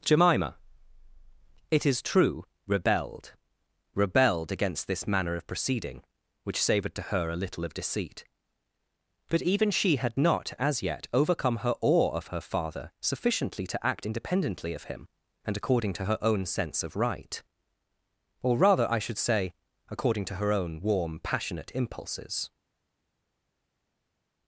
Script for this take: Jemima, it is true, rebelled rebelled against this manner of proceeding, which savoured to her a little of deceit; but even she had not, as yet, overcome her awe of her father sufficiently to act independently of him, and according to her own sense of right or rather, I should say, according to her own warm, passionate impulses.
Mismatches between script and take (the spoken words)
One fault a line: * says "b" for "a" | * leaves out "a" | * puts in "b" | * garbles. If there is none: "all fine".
all fine